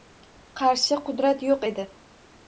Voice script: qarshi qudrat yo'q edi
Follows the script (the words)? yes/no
yes